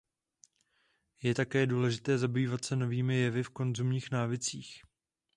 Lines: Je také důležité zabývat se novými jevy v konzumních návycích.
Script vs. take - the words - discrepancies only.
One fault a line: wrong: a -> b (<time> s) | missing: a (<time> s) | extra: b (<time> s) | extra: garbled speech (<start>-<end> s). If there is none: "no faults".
no faults